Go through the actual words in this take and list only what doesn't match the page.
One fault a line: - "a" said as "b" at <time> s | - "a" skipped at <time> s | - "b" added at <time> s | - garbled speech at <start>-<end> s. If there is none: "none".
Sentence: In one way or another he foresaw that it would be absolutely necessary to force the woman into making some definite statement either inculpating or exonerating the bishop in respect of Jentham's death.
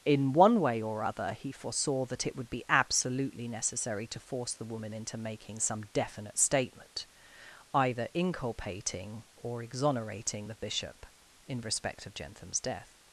- "another" said as "other" at 1.0 s